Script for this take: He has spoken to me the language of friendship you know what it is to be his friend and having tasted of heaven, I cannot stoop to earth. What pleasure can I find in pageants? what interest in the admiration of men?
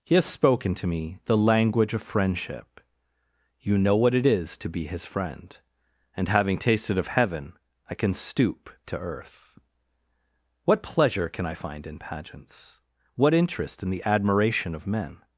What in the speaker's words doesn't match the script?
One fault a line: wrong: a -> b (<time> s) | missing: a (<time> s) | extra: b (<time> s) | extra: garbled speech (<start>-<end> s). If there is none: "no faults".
wrong: cannot -> can (7.9 s)